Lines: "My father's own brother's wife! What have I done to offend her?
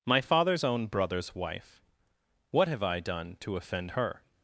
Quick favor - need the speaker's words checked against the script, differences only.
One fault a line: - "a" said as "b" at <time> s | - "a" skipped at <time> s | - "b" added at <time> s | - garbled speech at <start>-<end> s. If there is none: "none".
none